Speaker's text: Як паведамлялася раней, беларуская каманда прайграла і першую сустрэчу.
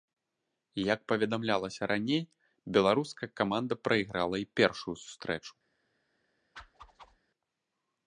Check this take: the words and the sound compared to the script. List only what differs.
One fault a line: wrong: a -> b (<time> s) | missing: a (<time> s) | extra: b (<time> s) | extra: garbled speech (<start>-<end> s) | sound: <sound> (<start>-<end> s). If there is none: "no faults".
sound: whoosh (6.6-7.2 s)